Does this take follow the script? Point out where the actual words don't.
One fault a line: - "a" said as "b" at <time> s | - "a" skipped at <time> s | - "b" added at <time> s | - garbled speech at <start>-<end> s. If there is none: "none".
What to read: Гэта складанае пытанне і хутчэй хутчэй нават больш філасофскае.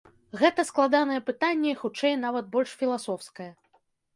- "хутчэй" skipped at 2.1 s